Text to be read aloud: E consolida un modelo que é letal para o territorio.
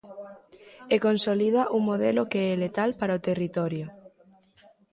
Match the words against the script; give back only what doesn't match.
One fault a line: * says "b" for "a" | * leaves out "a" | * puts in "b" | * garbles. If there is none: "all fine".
all fine